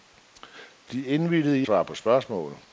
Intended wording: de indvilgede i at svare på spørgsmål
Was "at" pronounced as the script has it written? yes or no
no